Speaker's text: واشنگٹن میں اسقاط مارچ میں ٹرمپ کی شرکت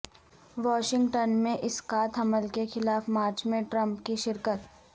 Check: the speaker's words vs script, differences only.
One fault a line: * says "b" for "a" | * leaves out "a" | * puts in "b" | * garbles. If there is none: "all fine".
* puts in "حمل کے خلاف"